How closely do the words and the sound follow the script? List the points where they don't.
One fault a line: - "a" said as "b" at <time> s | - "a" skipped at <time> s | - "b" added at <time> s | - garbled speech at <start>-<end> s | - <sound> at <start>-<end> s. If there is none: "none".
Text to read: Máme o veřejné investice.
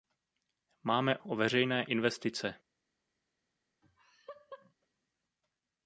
- laugh at 3.8-4.7 s